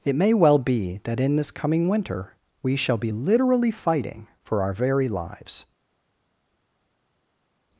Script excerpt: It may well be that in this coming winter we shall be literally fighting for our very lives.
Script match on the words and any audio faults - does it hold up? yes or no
yes